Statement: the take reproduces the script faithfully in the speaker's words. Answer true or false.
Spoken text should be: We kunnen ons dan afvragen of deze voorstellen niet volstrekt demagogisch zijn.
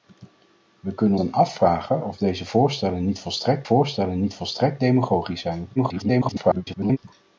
false